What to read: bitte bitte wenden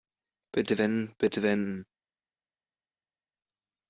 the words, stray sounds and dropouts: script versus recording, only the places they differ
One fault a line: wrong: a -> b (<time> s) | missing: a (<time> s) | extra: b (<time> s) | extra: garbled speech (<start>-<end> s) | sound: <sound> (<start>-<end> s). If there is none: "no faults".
extra: wenden (0.8 s)